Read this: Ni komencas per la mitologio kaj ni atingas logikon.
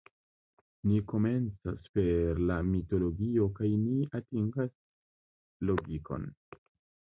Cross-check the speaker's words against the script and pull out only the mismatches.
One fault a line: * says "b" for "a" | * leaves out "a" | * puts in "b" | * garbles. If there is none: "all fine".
all fine